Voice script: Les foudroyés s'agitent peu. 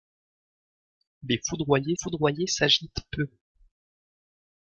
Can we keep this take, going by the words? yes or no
no